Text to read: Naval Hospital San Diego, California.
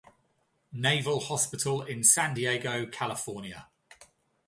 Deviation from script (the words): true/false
true